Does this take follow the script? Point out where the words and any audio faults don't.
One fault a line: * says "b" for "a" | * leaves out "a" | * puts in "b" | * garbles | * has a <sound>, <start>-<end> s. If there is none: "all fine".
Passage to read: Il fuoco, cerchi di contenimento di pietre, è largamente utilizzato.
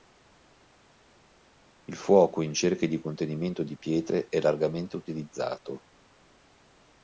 * puts in "in"